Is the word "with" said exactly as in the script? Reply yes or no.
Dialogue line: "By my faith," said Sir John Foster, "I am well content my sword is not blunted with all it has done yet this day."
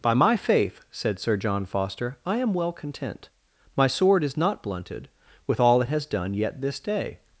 yes